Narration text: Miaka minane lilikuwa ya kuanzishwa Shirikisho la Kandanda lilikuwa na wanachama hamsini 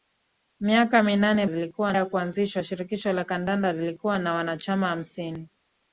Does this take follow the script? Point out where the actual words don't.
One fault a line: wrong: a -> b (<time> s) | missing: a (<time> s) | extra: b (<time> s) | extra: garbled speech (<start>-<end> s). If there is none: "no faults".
no faults